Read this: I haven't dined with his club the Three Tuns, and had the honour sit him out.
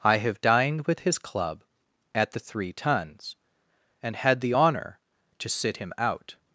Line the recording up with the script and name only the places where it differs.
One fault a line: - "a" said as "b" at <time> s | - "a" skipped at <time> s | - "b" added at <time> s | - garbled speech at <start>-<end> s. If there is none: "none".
- "haven't" said as "have" at 0.2 s
- "at" added at 2.1 s
- "to" added at 5.4 s